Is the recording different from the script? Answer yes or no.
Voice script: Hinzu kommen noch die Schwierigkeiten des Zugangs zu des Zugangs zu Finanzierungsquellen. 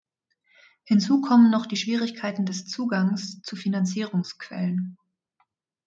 yes